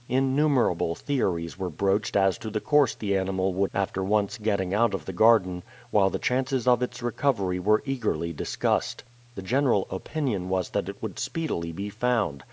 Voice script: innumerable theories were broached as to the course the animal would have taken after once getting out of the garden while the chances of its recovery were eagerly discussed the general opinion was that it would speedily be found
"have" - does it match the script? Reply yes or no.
no